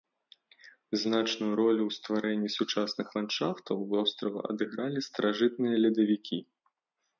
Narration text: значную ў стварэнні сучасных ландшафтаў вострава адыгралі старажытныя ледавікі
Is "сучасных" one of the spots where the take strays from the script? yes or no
no